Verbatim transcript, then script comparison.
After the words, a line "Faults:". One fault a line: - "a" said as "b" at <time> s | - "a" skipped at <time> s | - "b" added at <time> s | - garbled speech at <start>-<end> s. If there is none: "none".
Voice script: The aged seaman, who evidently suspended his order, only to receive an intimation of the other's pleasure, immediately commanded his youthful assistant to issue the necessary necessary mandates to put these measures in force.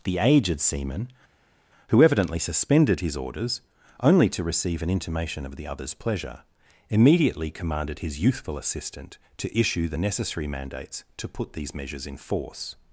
The aged seaman, who evidently suspended his orders, only to receive an intimation of the other's pleasure, immediately commanded his youthful assistant to issue the necessary mandates to put these measures in force.
Faults:
- "order" said as "orders" at 3.2 s
- "necessary" skipped at 10.5 s